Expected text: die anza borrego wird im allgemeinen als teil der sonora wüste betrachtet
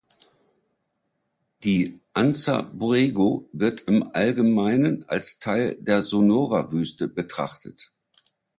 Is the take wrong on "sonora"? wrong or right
right